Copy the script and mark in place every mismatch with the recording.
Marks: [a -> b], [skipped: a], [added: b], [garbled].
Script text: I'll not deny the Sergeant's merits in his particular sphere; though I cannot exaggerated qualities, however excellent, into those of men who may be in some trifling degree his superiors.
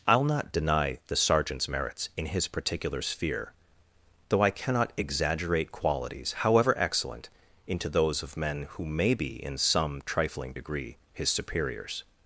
I'll not deny the Sergeant's merits in his particular sphere; though I cannot [exaggerated -> exaggerate] qualities, however excellent, into those of men who may be in some trifling degree his superiors.